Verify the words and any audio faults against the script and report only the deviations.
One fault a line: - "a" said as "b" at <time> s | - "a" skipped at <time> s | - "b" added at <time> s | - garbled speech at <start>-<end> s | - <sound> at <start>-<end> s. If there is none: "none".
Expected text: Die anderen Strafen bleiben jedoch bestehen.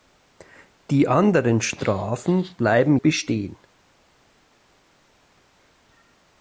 - "jedoch" skipped at 3.0 s